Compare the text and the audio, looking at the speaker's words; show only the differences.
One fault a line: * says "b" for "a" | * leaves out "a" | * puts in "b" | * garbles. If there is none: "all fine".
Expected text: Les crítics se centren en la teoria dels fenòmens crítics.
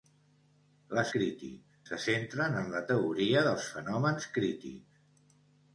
all fine